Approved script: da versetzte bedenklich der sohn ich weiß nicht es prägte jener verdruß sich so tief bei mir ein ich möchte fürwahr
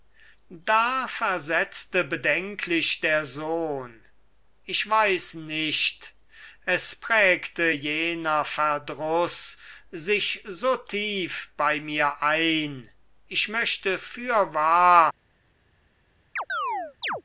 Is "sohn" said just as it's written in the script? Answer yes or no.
yes